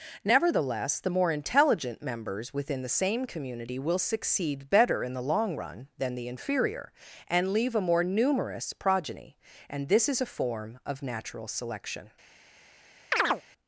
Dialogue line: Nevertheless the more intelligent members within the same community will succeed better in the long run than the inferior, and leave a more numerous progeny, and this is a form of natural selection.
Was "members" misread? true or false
false